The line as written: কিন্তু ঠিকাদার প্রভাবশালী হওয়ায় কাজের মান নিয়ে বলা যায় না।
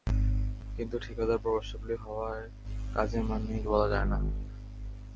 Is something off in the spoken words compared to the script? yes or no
no